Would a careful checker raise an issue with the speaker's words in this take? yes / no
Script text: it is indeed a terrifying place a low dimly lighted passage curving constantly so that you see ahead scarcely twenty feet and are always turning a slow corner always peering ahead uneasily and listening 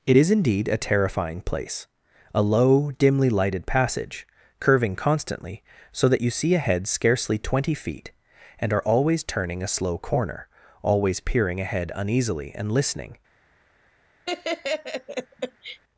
no